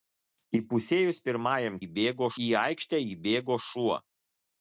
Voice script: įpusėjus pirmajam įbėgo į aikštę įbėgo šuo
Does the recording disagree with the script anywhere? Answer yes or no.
no